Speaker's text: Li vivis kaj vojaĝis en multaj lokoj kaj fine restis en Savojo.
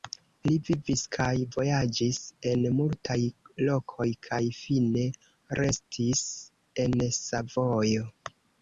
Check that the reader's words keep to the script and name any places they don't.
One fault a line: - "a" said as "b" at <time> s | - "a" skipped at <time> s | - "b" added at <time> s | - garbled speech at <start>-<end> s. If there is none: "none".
none